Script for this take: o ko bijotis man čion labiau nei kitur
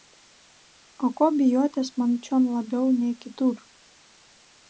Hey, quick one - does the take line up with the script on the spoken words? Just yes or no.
yes